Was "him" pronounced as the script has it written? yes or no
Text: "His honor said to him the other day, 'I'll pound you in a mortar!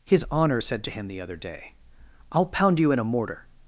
yes